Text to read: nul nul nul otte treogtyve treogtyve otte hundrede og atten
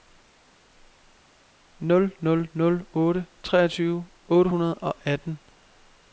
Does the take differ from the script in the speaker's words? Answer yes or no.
yes